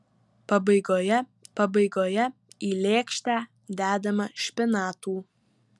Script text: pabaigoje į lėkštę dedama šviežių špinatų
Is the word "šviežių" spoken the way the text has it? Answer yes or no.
no